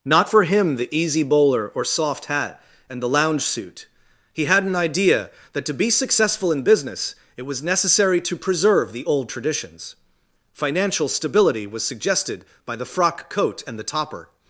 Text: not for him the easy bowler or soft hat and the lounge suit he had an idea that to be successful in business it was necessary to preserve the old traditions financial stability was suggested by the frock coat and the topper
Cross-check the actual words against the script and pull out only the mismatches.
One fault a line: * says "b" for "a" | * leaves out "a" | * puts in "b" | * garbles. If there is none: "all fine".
all fine